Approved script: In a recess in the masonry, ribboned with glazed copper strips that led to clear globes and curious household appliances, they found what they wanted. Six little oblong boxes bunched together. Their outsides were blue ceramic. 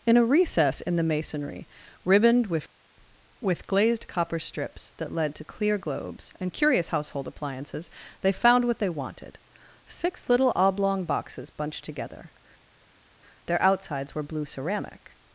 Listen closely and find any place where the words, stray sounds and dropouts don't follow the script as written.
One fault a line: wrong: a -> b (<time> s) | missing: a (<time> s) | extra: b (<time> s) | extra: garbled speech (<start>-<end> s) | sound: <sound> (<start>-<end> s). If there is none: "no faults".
extra: with (3.4 s)